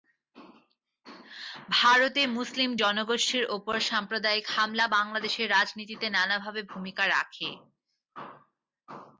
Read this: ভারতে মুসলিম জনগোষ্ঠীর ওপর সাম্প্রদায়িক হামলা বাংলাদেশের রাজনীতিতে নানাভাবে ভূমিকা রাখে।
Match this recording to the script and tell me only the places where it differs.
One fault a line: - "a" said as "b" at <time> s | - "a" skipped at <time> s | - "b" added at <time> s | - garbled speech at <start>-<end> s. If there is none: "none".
none